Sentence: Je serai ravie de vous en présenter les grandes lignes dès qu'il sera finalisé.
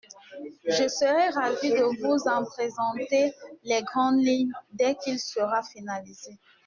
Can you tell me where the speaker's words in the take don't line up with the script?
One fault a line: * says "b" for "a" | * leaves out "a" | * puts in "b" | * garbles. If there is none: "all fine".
all fine